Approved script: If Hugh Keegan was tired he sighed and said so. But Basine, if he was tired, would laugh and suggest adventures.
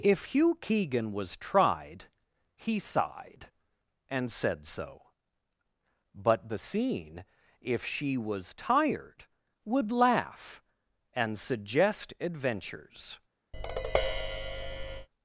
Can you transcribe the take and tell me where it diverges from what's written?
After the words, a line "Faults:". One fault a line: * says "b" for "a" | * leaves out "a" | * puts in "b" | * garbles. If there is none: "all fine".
If Hugh Keegan was tried he sighed and said so. But Basine, if she was tired, would laugh and suggest adventures.
Faults:
* says "tried" for "tired"
* says "she" for "he"